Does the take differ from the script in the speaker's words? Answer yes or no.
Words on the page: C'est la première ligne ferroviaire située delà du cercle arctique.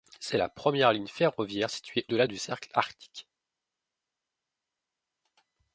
no